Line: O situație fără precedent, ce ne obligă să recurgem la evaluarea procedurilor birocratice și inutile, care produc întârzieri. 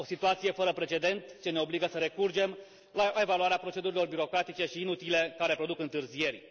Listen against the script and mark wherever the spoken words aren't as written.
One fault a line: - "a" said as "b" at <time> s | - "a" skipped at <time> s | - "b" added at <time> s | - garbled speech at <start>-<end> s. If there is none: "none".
none